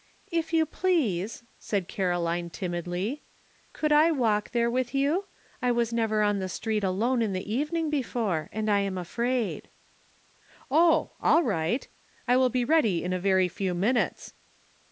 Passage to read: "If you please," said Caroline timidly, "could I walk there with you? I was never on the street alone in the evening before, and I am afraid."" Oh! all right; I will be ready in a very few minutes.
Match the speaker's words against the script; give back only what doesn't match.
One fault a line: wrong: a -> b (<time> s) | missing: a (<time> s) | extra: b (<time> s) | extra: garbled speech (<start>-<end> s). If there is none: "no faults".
no faults